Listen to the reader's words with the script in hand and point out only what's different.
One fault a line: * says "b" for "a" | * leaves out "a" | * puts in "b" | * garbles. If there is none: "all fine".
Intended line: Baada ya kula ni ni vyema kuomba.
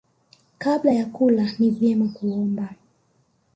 * says "Kabla" for "Baada"
* leaves out "ni"